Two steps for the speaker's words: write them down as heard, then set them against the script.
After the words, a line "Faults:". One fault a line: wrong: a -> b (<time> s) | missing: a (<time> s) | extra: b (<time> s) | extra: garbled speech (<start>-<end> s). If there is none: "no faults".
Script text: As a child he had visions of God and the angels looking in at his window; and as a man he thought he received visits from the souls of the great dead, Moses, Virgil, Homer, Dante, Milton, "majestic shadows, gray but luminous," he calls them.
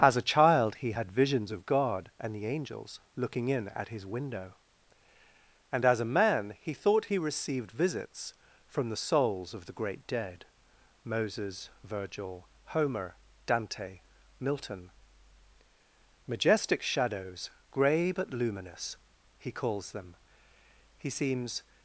As a child he had visions of God and the angels looking in at his window; and as a man he thought he received visits from the souls of the great dead, Moses, Virgil, Homer, Dante, Milton, "majestic shadows, gray but luminous," he calls them. He seems
Faults:
extra: He seems (21.0 s)